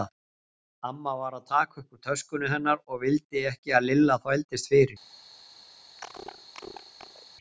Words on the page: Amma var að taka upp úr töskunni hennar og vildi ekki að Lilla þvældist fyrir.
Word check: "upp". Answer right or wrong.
right